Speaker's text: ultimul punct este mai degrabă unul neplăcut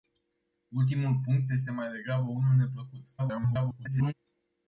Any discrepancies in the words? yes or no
yes